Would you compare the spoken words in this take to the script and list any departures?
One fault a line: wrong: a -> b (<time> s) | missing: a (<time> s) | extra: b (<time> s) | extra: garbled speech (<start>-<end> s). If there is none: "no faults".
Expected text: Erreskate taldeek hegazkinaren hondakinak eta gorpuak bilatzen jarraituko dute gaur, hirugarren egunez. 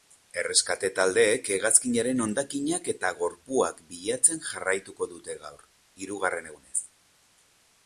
no faults